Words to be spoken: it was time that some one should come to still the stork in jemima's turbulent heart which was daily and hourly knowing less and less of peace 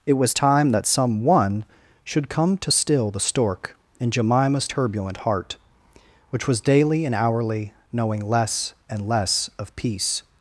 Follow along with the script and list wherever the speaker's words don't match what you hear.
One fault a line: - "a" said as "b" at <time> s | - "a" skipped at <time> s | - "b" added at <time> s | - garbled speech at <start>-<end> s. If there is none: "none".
none